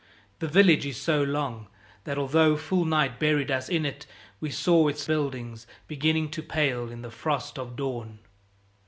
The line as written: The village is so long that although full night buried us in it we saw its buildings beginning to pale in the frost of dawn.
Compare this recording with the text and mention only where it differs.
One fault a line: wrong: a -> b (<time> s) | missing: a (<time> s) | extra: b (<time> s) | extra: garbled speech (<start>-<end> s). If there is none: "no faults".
no faults